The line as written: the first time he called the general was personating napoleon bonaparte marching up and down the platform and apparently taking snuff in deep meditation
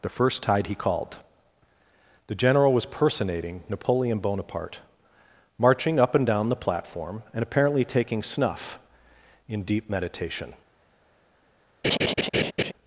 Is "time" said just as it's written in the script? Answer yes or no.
no